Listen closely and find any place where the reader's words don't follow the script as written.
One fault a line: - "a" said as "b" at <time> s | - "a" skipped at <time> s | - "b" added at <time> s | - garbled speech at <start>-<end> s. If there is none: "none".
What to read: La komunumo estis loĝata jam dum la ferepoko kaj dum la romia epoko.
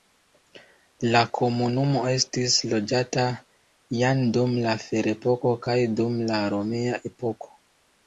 none